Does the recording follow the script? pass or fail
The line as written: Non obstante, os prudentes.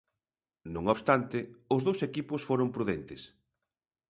fail